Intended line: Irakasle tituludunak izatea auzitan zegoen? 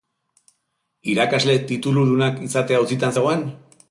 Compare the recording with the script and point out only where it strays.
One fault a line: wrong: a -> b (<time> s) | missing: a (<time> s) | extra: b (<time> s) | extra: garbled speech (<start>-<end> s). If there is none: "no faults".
no faults